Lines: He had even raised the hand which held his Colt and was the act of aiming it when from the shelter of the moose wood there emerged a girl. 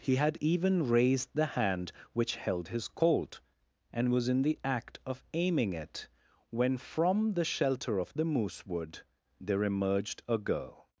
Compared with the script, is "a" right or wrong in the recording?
right